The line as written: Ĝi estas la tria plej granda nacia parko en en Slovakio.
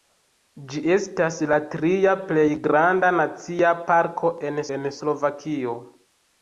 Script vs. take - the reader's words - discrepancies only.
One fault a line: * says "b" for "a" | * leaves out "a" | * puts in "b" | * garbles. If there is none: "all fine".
all fine